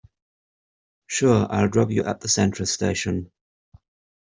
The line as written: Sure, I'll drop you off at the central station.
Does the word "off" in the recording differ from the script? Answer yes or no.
yes